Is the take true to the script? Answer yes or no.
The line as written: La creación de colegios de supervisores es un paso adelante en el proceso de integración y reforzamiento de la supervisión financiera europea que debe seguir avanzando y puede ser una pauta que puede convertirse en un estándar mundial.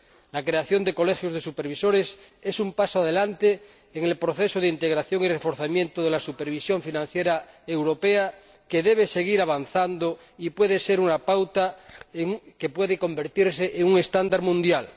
yes